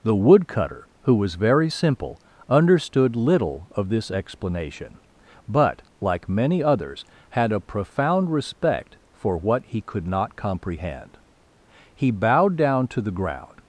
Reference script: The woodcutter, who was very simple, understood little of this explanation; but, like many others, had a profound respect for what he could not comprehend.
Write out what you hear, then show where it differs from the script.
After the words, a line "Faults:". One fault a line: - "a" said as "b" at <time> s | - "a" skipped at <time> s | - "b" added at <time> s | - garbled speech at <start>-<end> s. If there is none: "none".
The woodcutter, who was very simple, understood little of this explanation; but, like many others, had a profound respect for what he could not comprehend. He bowed down to the ground
Faults:
- "He bowed down to the ground" added at 11.9 s